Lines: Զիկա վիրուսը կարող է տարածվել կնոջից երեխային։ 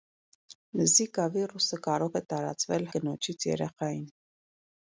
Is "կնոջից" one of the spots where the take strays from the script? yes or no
no